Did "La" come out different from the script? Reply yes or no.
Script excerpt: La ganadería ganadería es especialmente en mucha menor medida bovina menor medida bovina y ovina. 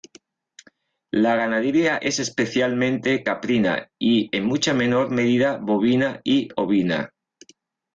no